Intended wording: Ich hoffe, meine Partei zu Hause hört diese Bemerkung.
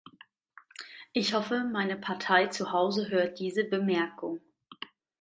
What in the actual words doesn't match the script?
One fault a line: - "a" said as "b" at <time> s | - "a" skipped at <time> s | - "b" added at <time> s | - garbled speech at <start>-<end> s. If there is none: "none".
none